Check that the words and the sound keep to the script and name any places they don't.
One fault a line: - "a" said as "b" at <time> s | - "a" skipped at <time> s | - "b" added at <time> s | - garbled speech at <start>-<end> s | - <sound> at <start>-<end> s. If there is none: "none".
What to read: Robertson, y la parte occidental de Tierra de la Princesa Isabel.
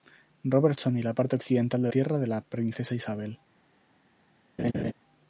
- laugh at 4.6-4.9 s